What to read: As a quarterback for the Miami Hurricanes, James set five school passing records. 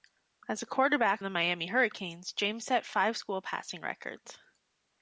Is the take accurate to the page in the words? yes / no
no